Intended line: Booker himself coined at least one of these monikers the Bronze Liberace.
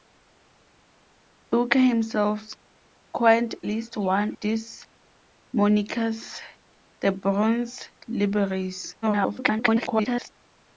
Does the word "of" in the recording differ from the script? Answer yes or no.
yes